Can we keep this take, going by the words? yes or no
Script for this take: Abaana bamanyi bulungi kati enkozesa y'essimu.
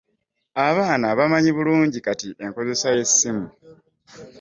yes